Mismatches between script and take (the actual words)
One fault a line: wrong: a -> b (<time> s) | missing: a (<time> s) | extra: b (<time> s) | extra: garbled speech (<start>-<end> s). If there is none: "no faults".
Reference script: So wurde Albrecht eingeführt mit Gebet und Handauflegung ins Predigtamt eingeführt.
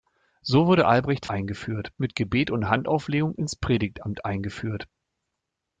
no faults